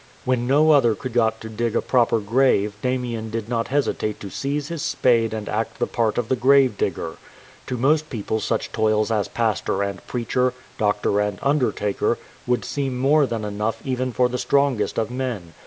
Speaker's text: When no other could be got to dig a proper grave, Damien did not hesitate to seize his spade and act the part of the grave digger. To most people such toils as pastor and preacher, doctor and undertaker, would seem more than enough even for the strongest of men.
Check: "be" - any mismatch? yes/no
yes